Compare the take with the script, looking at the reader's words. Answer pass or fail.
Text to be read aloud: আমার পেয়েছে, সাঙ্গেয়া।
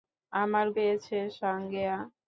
pass